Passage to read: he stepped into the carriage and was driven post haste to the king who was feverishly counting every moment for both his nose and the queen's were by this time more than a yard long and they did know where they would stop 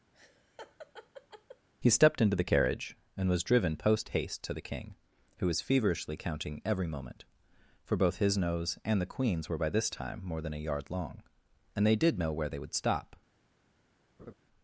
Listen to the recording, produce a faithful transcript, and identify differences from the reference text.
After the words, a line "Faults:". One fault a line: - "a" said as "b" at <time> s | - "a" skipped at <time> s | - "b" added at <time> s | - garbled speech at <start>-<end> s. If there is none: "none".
he stepped into the carriage and was driven post haste to the king who was feverishly counting every moment for both his nose and the queen's were by this time more than a yard long and they did know where they would stop
Faults:
none